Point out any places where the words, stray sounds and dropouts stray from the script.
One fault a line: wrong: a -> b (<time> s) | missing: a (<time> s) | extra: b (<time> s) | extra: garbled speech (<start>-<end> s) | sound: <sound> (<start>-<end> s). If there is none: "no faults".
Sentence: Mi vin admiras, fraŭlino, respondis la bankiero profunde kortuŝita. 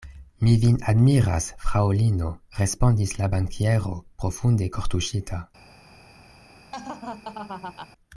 sound: laugh (6.7-7.9 s)